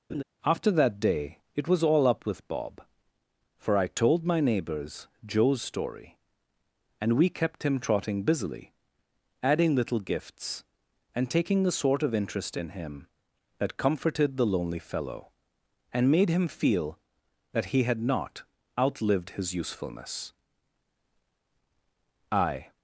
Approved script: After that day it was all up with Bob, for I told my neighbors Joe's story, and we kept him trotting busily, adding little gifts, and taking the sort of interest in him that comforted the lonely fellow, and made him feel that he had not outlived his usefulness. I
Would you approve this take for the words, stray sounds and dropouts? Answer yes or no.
no